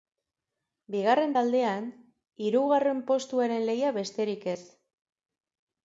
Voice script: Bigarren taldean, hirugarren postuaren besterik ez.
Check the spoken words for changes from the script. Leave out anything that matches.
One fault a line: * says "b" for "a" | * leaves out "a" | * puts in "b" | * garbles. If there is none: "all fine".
* puts in "lehia"